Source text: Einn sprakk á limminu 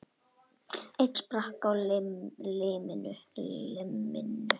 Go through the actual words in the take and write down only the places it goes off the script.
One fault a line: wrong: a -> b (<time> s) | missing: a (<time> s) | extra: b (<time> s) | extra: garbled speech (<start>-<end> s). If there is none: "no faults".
no faults